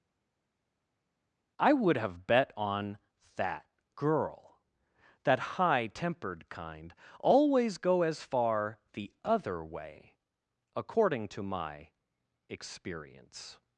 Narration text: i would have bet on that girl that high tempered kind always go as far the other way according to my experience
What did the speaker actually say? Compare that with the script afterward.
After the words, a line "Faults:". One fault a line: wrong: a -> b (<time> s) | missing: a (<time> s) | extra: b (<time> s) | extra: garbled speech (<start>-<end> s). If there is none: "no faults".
i would have bet on that girl that high tempered kind always go as far the other way according to my experience
Faults:
no faults